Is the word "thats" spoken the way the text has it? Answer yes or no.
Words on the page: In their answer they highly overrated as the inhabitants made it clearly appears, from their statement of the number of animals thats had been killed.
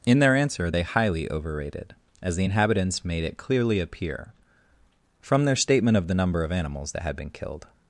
no